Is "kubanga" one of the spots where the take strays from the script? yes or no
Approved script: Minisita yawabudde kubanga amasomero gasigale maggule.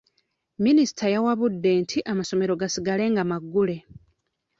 yes